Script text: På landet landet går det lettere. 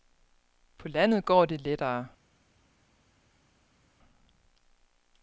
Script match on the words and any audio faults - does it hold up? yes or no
no